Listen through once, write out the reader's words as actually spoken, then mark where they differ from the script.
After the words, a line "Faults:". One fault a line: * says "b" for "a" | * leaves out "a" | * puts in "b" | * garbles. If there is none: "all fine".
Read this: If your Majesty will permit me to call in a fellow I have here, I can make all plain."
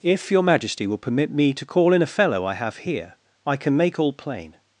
If your Majesty will permit me to call in a fellow I have here, I can make all plain."
Faults:
all fine